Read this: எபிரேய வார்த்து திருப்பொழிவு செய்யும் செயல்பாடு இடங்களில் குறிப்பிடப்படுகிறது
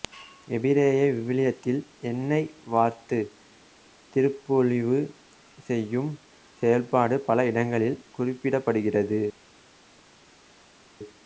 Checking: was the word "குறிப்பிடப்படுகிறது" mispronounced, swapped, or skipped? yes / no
no